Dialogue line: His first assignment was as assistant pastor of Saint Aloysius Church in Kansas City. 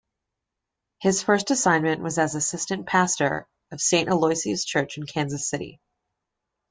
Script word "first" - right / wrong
right